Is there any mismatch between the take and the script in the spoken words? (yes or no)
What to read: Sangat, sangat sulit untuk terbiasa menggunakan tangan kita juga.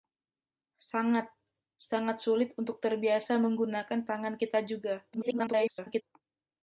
yes